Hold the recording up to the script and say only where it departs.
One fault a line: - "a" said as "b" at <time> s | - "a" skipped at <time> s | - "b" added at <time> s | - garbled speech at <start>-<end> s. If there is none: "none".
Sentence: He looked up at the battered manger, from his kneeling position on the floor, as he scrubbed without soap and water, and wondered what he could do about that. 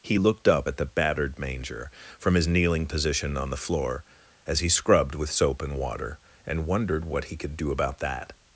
- "without" said as "with" at 5.1 s